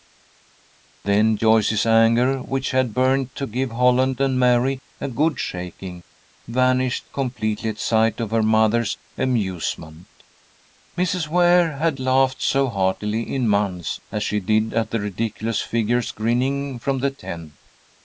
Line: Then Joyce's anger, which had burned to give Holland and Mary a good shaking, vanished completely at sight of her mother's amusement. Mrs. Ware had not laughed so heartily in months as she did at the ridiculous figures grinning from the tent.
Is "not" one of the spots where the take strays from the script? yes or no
yes